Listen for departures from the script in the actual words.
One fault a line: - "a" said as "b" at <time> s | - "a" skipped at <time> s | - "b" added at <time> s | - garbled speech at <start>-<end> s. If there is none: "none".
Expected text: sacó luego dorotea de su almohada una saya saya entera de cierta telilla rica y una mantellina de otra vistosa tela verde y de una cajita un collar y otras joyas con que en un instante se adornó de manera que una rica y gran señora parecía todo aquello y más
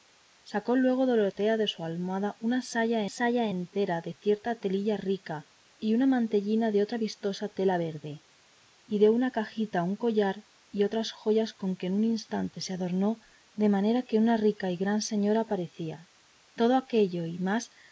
none